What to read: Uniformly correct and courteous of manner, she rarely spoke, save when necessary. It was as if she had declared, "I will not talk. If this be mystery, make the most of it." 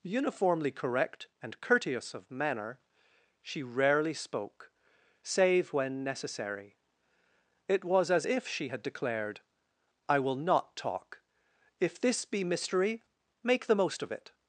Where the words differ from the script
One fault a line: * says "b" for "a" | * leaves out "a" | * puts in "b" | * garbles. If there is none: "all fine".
all fine